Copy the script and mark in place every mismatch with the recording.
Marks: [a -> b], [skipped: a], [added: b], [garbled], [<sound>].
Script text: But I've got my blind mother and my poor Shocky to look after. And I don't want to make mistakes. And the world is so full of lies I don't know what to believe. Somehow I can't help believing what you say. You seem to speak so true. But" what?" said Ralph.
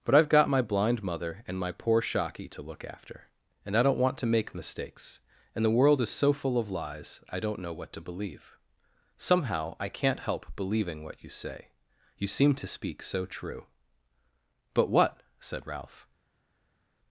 But I've got my blind mother and my poor Shocky to look after. And I don't want to make mistakes. And the world is so full of lies I don't know what to believe. Somehow I can't help believing what you say. You seem to speak so true. But" what?" said Ralph.